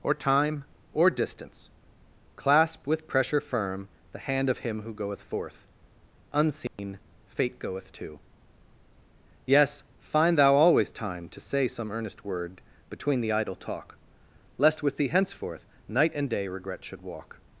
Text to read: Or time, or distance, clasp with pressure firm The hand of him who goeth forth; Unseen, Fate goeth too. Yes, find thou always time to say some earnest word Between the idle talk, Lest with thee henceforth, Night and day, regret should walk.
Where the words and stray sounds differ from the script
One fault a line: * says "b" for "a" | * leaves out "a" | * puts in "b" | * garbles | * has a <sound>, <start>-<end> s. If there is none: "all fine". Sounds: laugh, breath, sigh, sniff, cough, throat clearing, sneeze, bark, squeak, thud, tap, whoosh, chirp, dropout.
* has a dropout, 6.7-6.8 s